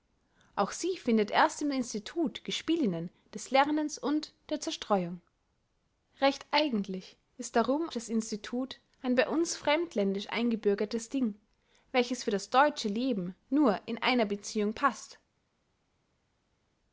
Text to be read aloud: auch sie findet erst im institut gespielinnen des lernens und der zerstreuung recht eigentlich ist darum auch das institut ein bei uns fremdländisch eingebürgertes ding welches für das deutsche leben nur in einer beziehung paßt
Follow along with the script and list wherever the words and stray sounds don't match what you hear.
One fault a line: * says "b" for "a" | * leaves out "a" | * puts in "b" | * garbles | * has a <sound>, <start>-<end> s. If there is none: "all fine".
* leaves out "auch"